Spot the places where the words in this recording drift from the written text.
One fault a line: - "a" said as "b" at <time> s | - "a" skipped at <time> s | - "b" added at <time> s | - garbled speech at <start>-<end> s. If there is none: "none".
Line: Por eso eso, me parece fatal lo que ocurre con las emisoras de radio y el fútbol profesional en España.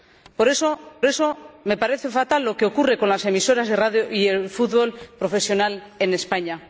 none